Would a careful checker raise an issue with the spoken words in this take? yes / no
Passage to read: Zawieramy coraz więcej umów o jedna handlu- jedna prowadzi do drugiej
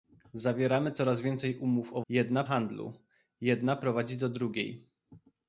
no